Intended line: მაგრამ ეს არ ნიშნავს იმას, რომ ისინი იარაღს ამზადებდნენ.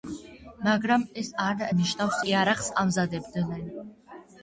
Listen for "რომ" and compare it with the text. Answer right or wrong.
wrong